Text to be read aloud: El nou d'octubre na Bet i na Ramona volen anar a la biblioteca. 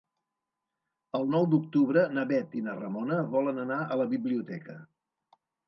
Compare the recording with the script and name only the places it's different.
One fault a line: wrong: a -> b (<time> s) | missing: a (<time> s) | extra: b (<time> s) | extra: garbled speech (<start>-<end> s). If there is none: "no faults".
no faults